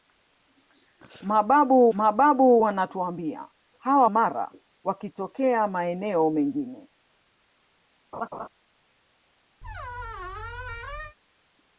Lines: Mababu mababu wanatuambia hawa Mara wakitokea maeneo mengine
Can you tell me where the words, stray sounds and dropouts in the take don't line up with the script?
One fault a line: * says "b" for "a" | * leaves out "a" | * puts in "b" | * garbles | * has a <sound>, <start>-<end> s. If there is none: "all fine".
* has a laugh, 8.1-8.5 s
* has a squeak, 9.6-11.2 s